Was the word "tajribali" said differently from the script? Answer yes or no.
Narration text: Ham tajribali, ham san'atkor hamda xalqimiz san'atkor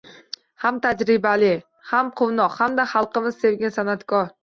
no